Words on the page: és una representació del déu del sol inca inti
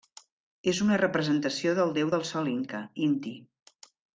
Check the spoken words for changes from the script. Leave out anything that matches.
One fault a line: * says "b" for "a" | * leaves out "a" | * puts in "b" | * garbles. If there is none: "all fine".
all fine